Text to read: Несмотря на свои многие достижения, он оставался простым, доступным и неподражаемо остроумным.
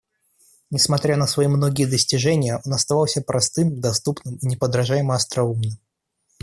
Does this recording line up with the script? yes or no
yes